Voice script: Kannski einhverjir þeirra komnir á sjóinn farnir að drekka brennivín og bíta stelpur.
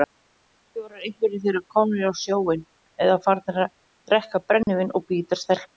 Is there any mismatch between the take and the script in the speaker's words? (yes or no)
yes